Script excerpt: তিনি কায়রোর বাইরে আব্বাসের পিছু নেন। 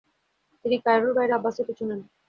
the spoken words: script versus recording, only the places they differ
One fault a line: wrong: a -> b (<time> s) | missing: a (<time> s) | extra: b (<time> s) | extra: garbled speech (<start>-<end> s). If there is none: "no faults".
no faults